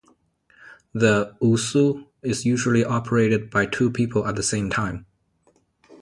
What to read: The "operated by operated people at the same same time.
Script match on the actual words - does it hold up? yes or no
no